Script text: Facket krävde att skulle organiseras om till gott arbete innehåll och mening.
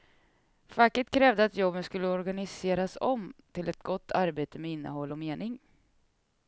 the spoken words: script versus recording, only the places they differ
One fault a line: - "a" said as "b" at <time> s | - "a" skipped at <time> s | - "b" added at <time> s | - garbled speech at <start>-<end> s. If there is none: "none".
- "jobben" added at 1.6 s
- "ett" added at 3.7 s
- "med" added at 4.6 s